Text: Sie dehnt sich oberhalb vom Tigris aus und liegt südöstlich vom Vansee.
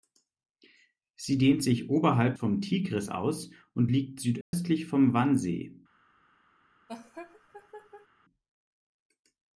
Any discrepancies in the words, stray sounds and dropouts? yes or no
yes